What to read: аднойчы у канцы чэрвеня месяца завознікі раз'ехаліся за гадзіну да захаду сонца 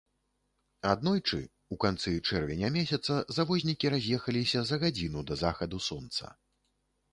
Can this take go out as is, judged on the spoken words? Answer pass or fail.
pass